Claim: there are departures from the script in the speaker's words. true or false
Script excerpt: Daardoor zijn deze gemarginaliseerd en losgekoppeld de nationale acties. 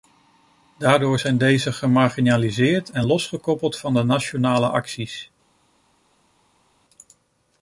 true